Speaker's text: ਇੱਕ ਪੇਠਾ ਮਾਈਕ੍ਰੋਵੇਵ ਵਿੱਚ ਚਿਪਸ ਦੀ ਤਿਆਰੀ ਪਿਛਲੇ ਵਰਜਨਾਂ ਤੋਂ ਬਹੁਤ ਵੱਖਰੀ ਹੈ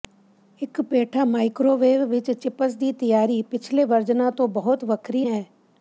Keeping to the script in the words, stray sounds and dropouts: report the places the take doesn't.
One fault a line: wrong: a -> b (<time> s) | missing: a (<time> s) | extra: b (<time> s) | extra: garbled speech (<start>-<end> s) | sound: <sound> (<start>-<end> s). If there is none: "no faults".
no faults